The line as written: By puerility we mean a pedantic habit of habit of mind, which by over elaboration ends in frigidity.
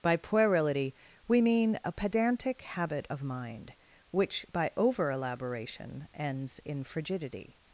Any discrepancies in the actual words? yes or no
yes